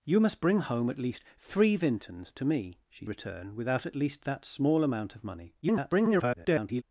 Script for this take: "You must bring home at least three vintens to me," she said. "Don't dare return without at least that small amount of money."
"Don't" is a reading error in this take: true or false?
true